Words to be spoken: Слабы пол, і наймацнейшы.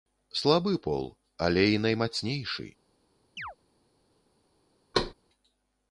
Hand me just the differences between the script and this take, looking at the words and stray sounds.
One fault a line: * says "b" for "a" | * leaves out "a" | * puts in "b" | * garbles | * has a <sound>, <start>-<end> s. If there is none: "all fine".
* puts in "але"
* has a chirp, 3.4-3.6 s
* has a thud, 4.9-5.1 s